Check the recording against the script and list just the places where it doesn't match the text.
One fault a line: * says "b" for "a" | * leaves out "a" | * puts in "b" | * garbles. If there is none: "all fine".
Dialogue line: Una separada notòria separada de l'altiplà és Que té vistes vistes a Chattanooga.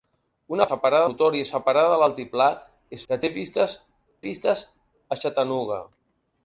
all fine